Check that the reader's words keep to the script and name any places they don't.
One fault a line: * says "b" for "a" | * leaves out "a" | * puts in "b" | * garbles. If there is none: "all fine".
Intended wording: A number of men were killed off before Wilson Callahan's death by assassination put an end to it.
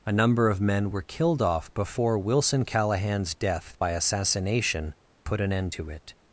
all fine